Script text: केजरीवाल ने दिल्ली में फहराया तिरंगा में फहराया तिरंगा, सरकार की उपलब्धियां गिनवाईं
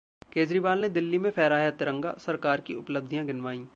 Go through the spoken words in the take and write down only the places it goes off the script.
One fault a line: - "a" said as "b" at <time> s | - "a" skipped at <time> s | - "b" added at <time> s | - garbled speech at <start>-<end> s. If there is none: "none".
- "में फहराया तिरंगा" skipped at 2.1 s